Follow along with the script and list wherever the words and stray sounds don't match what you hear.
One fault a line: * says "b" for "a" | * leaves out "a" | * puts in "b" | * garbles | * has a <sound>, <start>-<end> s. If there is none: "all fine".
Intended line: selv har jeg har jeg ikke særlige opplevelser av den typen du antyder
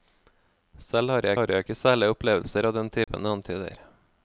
* has a dropout, 3.0-3.1 s